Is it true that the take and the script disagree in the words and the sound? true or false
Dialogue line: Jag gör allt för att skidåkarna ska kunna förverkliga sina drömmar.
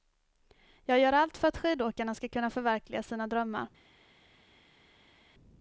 false